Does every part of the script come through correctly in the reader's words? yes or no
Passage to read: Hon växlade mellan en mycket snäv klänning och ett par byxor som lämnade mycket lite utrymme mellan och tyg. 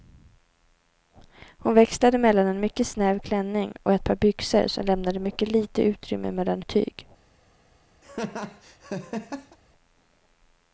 yes